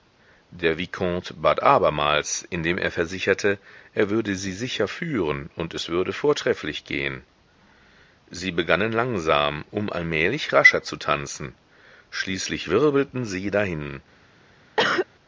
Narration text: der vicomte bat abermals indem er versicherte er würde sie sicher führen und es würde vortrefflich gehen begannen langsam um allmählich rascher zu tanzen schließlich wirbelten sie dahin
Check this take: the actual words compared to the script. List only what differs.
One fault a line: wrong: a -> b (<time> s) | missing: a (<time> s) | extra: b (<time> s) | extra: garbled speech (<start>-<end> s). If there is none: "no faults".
extra: sie (8.3 s)